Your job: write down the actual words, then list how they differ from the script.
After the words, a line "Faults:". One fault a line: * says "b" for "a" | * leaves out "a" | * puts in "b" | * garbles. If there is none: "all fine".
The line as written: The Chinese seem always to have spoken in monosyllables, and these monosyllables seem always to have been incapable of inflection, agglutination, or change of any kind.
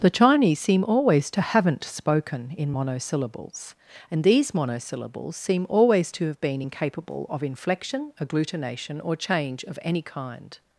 The Chinese seem always to haven't spoken in monosyllables, and these monosyllables seem always to have been incapable of inflection, agglutination, or change of any kind.
Faults:
* says "haven't" for "have"